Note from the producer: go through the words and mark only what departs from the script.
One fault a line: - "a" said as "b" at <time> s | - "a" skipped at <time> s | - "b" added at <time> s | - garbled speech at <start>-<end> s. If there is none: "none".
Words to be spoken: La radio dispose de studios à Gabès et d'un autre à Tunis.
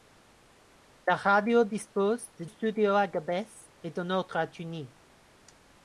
none